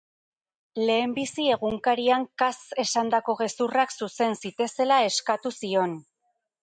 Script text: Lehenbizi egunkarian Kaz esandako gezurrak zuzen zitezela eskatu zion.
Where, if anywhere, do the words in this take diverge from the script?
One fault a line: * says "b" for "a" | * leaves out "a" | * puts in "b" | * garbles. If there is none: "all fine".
all fine